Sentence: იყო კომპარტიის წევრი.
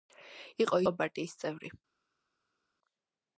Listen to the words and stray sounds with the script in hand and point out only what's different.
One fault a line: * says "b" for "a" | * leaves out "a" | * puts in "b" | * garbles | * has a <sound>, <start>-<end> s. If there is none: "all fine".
all fine